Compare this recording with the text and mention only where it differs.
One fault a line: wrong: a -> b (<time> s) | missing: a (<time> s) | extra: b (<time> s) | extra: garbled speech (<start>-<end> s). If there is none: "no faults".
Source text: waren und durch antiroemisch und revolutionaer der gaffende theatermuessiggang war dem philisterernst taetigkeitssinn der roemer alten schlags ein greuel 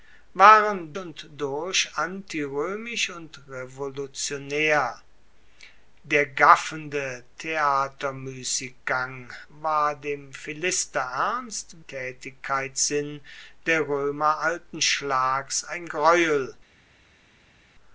no faults